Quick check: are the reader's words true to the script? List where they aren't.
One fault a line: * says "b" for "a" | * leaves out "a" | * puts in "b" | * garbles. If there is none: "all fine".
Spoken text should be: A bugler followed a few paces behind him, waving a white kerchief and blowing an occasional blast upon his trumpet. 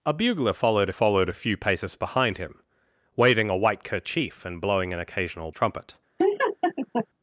* puts in "followed"
* leaves out "blast upon his"